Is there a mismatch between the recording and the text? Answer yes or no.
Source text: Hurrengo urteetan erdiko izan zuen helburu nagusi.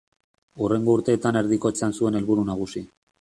no